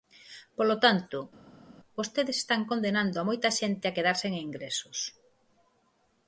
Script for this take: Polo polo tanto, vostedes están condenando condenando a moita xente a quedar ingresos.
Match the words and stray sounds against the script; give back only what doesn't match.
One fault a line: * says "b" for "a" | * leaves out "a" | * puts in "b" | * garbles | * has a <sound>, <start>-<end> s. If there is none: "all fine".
* leaves out "polo"
* leaves out "condenando"
* puts in "sen"